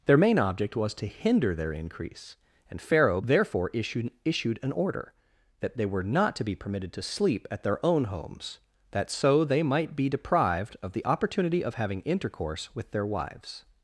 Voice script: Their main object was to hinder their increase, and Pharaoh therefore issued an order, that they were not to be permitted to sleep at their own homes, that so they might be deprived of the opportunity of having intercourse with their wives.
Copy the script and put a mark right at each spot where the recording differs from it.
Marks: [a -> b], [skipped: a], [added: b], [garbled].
Their main object was to hinder their increase, and Pharaoh therefore issued [added: issued] an order, that they were not to be permitted to sleep at their own homes, that so they might be deprived of the opportunity of having intercourse with their wives.